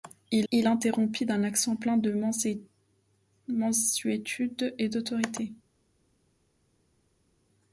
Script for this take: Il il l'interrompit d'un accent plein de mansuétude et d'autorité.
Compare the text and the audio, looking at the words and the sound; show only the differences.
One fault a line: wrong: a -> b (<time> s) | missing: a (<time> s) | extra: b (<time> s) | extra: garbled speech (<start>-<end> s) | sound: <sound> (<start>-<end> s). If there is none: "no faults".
no faults